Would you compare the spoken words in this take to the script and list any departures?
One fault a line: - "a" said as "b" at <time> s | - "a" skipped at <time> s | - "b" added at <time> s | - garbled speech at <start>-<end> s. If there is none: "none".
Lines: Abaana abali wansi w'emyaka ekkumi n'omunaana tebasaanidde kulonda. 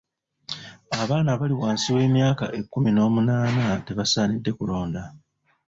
none